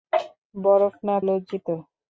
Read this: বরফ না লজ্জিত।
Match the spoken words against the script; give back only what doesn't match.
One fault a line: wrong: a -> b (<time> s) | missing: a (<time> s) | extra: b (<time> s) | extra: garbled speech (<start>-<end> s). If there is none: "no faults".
no faults